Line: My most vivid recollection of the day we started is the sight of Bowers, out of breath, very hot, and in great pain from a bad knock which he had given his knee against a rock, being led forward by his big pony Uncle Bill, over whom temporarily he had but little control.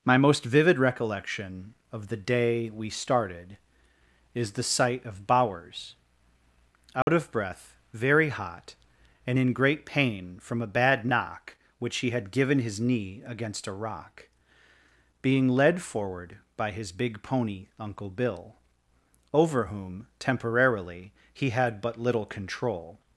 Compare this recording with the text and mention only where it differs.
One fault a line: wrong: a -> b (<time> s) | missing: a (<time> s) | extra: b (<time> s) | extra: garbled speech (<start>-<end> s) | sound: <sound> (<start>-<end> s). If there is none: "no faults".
sound: dropout (7.0-7.1 s)